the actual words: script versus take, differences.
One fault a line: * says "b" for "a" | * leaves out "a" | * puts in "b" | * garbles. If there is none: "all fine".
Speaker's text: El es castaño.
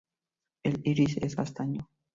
* puts in "iris"